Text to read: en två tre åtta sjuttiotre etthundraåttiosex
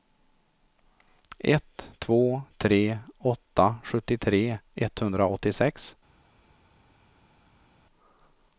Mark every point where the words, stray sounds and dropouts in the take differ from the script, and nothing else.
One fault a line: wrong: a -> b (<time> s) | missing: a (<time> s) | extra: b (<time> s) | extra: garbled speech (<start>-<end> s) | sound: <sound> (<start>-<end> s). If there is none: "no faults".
wrong: en -> ett (1.4 s)